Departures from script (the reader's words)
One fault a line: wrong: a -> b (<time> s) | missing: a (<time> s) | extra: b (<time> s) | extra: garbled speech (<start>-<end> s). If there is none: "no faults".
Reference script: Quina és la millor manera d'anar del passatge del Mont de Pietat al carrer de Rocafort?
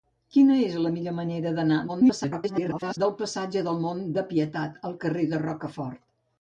extra: garbled speech (1.9-3.0 s)